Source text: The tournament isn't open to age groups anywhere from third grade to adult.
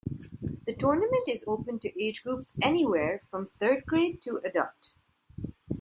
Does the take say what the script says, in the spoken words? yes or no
no